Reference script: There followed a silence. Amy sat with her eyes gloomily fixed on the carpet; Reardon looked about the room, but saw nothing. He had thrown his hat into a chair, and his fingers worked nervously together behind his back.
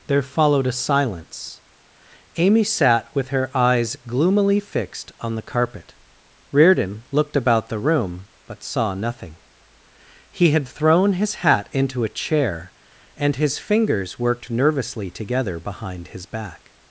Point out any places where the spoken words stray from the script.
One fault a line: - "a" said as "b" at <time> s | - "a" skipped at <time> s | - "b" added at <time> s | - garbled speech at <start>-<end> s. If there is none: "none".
none